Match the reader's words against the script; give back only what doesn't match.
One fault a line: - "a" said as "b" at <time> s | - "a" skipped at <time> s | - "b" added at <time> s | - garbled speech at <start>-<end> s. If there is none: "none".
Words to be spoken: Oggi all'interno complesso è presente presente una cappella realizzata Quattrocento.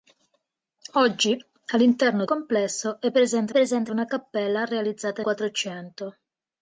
none